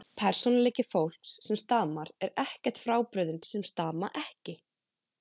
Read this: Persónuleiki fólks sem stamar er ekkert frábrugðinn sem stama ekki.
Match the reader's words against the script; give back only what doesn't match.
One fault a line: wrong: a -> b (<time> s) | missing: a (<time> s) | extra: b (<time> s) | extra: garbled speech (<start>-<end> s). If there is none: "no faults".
no faults